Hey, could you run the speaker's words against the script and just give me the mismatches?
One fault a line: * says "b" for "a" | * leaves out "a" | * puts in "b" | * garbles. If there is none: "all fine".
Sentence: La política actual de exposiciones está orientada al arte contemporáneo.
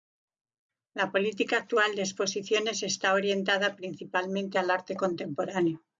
* puts in "principalmente"